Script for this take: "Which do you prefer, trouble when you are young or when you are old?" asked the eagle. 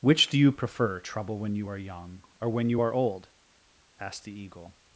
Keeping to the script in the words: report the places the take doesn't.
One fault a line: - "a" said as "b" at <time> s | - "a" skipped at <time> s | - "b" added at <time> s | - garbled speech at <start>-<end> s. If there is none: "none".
none